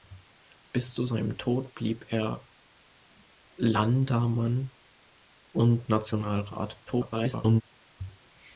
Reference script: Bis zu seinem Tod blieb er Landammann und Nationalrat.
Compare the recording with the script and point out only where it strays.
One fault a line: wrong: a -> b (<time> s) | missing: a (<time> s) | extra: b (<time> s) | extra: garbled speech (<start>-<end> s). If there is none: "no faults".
extra: garbled speech (6.9-7.6 s)